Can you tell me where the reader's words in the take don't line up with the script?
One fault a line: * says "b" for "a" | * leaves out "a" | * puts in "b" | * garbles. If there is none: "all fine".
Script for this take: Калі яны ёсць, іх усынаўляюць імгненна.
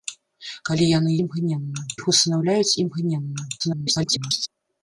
* says "імгненна" for "ёсць"
* garbles